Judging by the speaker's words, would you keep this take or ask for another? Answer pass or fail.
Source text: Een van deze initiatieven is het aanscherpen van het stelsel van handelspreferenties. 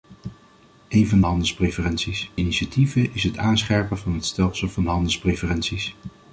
fail